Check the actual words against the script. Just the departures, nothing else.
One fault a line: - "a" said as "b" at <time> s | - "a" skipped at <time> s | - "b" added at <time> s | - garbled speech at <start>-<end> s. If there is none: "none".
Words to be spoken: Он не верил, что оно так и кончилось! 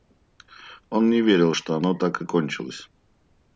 none